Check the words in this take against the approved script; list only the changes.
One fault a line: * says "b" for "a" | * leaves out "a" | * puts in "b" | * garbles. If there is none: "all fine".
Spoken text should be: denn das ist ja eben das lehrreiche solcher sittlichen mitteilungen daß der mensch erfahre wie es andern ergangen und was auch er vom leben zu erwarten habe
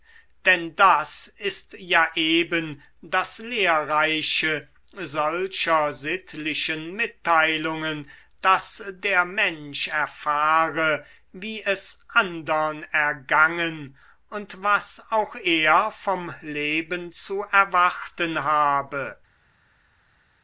all fine